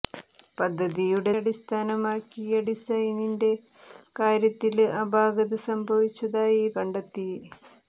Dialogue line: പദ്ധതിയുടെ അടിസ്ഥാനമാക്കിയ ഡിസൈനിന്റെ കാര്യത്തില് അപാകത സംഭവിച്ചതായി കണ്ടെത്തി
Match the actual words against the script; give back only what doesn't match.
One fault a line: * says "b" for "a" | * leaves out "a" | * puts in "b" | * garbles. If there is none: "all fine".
all fine